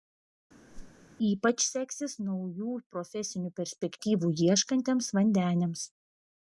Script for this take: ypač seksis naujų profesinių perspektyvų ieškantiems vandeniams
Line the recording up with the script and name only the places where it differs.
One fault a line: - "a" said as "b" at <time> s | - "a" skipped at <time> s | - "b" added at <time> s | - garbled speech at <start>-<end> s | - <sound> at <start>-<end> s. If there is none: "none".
- whoosh at 0.7-1.1 s